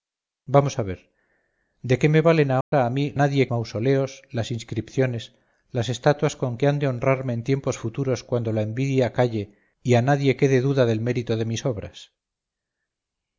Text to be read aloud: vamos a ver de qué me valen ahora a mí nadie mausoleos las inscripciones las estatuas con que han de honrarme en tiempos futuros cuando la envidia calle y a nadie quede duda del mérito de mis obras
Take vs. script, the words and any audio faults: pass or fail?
fail